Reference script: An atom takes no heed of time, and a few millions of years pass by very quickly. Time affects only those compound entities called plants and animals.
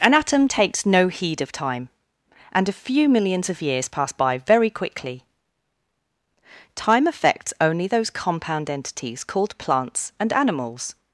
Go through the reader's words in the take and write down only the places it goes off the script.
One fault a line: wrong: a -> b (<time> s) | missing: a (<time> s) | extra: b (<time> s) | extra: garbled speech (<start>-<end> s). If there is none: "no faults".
no faults